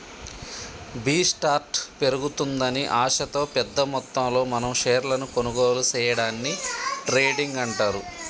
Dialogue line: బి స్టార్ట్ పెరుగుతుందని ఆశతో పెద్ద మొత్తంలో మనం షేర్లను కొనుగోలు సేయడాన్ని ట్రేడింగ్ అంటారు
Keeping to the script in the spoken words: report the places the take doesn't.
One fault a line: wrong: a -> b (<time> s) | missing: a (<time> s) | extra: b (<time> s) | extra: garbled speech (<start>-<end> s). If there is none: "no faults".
no faults